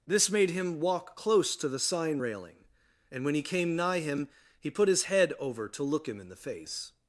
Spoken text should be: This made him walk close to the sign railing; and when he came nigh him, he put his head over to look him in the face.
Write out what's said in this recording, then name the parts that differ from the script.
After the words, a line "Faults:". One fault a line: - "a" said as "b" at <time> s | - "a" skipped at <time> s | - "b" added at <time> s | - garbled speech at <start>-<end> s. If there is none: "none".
This made him walk close to the sign railing; and when he came nigh him, he put his head over to look him in the face.
Faults:
none